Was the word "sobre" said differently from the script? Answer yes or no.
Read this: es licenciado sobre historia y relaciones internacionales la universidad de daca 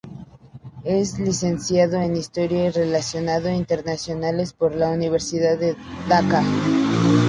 yes